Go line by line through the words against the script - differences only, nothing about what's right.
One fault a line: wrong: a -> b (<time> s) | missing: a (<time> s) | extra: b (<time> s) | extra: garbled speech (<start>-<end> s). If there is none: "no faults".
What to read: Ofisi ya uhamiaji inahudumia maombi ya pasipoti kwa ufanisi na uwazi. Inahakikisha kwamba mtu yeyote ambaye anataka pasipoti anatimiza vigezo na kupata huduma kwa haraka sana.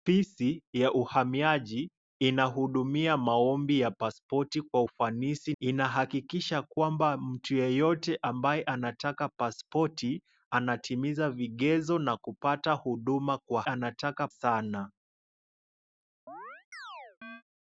missing: na uwazi (5.5 s)
wrong: haraka -> anataka (13.6 s)